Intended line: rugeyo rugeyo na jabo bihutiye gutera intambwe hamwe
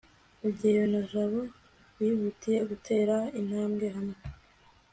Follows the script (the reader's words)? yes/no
no